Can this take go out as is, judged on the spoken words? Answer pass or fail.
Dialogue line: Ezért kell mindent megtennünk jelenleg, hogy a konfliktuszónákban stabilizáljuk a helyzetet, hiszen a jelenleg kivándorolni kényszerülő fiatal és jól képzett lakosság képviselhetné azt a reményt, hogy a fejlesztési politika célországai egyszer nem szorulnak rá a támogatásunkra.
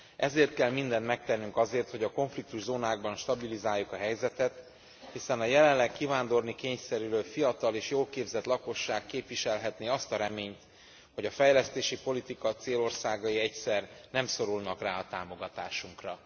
fail